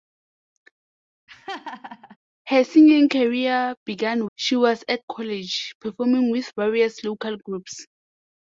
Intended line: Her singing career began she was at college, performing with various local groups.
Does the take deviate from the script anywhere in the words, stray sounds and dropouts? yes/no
yes